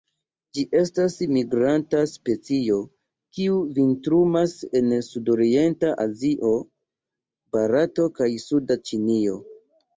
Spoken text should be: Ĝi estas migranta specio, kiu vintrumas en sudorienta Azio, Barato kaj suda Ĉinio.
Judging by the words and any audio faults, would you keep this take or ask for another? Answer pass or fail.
pass